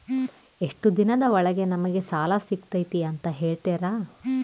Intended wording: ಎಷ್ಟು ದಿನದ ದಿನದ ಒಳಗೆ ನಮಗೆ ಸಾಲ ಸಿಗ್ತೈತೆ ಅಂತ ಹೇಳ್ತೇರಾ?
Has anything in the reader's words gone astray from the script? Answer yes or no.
yes